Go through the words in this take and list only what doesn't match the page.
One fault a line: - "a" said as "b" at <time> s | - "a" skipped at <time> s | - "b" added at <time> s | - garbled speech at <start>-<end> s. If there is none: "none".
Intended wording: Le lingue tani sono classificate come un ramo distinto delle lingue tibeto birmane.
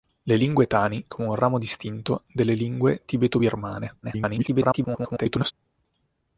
- "sono classificate" skipped at 1.1 s
- garbled speech at 4.0-5.5 s